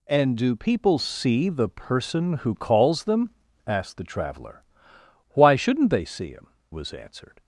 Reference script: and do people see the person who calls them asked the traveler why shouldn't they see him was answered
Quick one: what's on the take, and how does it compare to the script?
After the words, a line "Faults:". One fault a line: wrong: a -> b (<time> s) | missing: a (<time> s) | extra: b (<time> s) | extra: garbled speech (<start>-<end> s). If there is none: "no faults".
and do people see the person who calls them asked the traveler why shouldn't they see him was answered
Faults:
no faults